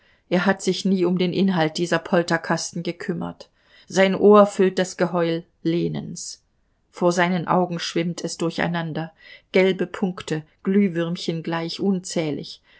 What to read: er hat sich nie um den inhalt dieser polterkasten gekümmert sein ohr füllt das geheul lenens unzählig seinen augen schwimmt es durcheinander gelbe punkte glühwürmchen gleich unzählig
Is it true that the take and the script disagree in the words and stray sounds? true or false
true